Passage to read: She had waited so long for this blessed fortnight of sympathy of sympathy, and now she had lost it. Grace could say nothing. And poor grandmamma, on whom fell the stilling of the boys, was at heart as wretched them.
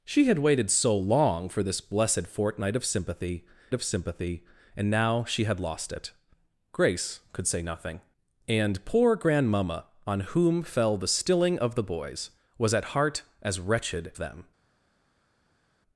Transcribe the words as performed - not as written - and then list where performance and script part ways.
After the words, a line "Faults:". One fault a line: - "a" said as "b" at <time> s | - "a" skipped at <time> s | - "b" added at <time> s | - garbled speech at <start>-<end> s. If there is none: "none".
She had waited so long for this blessed fortnight of sympathy of sympathy, and now she had lost it. Grace could say nothing. And poor grandmamma, on whom fell the stilling of the boys, was at heart as wretched them.
Faults:
none